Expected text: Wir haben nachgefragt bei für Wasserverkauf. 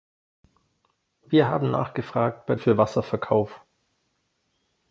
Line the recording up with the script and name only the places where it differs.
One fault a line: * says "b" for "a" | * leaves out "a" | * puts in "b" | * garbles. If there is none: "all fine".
all fine